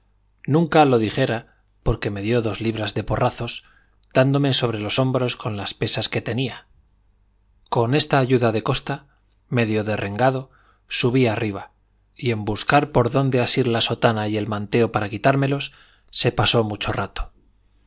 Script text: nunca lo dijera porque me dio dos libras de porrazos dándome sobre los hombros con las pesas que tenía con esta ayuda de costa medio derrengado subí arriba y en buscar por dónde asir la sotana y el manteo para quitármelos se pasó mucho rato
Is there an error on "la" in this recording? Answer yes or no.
no